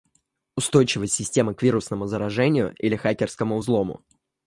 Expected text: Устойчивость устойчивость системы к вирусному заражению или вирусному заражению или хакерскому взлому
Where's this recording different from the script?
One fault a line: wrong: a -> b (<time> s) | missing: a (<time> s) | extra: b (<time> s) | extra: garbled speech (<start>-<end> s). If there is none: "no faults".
missing: устойчивость (1.1 s)
missing: вирусному заражению или (3.0 s)